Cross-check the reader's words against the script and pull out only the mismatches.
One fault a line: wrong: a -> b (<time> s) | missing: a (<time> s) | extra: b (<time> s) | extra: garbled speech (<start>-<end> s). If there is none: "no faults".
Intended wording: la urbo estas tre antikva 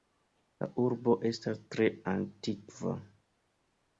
no faults